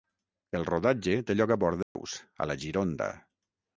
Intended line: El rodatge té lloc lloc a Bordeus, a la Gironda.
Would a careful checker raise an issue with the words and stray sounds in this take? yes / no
yes